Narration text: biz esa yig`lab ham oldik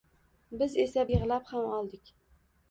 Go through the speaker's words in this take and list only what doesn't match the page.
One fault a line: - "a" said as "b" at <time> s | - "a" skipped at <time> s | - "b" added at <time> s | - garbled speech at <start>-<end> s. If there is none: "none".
none